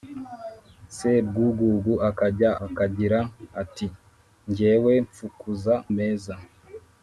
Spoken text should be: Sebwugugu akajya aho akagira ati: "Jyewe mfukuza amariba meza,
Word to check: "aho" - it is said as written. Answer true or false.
false